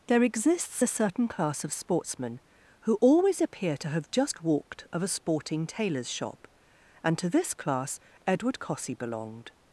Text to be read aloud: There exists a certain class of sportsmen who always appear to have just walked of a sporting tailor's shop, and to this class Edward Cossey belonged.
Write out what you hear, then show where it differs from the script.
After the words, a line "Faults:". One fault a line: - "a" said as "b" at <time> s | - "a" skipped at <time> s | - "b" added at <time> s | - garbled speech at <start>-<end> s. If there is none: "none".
There exists a certain class of sportsmen who always appear to have just walked of a sporting tailor's shop, and to this class Edward Cossey belonged.
Faults:
none